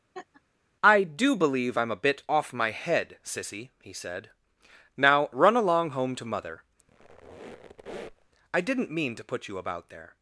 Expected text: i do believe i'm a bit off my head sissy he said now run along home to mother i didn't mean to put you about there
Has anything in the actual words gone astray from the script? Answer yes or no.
no